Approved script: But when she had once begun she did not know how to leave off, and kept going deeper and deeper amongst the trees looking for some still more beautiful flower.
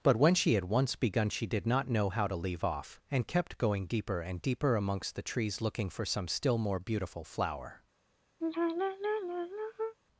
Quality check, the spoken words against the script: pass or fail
pass